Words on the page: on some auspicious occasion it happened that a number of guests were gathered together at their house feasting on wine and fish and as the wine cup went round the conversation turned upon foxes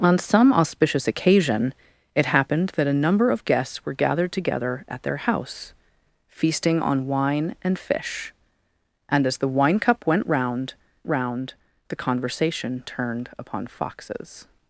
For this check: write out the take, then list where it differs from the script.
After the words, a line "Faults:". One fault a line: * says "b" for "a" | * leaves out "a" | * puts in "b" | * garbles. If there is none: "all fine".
on some auspicious occasion it happened that a number of guests were gathered together at their house feasting on wine and fish and as the wine cup went round round the conversation turned upon foxes
Faults:
* puts in "round"